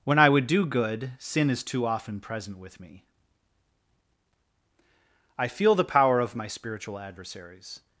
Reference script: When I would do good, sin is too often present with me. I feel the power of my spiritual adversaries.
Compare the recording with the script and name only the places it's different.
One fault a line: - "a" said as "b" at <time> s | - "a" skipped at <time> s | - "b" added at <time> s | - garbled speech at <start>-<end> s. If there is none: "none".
none